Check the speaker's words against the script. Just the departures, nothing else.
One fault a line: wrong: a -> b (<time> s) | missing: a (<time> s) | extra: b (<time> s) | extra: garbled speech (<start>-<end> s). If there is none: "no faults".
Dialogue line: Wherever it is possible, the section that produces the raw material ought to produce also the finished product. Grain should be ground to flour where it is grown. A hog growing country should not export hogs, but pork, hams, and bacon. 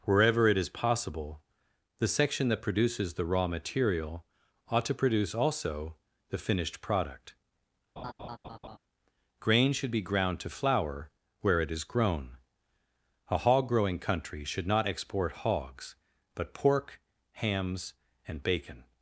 no faults